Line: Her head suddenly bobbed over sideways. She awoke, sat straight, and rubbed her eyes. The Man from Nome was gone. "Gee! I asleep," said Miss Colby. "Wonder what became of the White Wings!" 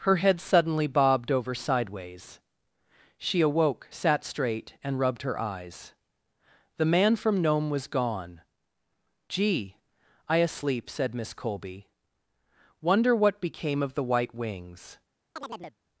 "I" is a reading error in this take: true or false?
false